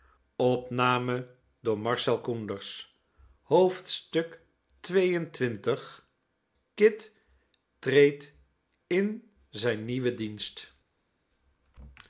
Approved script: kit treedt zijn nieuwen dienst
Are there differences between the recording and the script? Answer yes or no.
yes